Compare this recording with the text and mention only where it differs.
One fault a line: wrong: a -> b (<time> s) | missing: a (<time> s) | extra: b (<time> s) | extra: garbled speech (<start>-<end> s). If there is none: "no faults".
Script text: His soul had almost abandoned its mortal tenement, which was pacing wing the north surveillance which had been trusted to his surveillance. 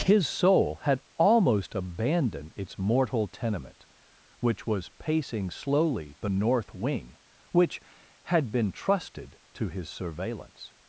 wrong: wing -> slowly (5.5 s)
wrong: surveillance -> wing (6.7 s)